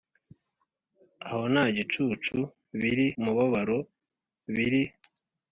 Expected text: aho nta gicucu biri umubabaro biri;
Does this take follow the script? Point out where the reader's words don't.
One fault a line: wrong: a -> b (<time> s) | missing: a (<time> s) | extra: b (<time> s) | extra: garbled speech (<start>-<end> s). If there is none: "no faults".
no faults